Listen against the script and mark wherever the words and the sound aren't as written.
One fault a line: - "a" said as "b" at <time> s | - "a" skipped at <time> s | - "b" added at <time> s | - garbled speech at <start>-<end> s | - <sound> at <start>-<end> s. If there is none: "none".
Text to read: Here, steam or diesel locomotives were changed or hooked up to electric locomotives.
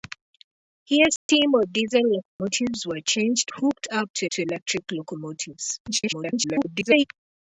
- dropout at 1.2-1.3 s
- dropout at 2.3-2.4 s
- "or" skipped at 3.5 s
- "to" added at 4.3 s
- garbled speech at 5.9-7.0 s